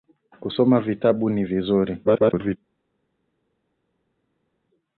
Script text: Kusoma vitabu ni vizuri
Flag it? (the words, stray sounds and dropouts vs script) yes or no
yes